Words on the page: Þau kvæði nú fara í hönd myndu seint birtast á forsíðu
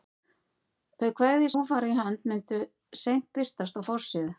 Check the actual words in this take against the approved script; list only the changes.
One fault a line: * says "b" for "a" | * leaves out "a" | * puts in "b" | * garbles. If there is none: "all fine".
all fine